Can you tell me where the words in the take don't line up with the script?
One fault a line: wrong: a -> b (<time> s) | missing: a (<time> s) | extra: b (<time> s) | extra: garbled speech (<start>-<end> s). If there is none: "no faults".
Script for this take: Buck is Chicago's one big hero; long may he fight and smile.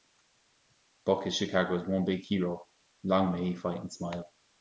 no faults